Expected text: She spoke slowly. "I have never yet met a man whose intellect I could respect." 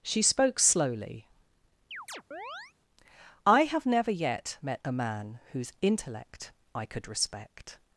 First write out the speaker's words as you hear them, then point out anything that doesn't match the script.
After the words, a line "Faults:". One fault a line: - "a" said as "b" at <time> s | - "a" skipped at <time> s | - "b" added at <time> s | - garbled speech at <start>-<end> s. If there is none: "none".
She spoke slowly. "I have never yet met a man whose intellect I could respect."
Faults:
none